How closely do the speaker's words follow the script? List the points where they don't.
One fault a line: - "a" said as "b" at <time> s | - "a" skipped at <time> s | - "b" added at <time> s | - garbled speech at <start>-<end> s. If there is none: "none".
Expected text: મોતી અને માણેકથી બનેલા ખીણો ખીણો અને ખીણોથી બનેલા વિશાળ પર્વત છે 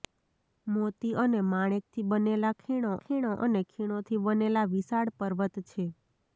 none